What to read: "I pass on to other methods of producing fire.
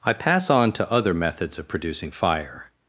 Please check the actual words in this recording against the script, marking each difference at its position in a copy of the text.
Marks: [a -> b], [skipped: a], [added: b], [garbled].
"I pass on to other methods of producing fire.